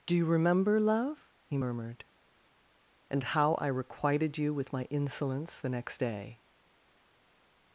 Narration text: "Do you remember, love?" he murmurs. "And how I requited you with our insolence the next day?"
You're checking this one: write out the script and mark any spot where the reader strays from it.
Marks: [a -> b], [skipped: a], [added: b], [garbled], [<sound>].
"Do you remember, love?" he [murmurs. -> murmured] "And how I requited you with [our -> my] insolence the next day?"